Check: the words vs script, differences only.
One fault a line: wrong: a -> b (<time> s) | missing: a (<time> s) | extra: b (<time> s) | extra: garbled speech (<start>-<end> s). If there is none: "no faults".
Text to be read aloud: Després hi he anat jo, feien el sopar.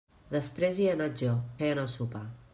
no faults